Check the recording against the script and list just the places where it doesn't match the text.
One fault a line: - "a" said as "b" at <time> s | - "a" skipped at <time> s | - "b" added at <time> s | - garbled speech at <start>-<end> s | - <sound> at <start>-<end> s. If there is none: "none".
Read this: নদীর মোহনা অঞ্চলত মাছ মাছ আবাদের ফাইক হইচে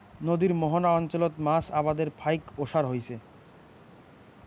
- "মাছ" skipped at 1.6 s
- "ওসার" added at 2.6 s